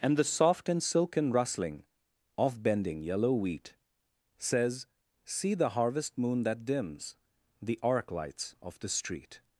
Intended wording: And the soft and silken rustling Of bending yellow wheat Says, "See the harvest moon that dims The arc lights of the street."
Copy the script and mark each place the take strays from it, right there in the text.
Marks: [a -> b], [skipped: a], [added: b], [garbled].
And the soft and silken rustling Of bending yellow wheat Says, "See the harvest moon that dims The arc lights of the street."